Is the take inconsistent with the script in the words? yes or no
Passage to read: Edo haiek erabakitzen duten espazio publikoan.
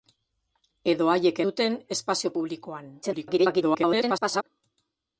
yes